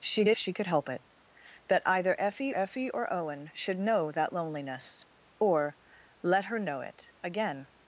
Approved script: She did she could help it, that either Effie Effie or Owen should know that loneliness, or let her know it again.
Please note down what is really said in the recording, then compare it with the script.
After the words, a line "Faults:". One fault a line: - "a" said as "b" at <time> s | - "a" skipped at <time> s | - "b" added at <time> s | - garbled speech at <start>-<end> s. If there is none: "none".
She did she could help it, that either Effie Effie or Owen should know that loneliness, or let her know it again.
Faults:
none